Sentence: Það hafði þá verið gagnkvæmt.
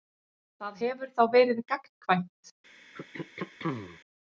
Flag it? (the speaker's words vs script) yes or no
yes